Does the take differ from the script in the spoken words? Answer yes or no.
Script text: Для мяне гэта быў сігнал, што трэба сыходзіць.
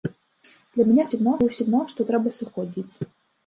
yes